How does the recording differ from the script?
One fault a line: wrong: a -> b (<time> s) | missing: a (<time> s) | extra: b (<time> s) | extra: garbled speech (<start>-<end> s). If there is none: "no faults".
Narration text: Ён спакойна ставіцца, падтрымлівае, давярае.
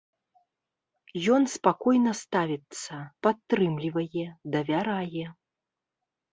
no faults